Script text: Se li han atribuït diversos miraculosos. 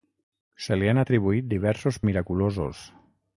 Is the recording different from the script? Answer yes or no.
no